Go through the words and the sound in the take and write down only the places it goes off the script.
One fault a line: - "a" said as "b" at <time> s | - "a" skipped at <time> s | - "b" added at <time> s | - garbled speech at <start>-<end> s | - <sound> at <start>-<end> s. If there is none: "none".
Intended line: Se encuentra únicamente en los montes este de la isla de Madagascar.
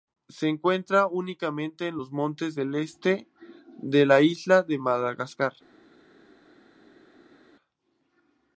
- "del" added at 2.6 s